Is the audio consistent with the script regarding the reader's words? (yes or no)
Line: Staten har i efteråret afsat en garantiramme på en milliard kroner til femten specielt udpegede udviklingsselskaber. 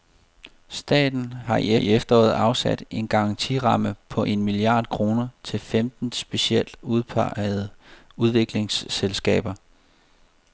no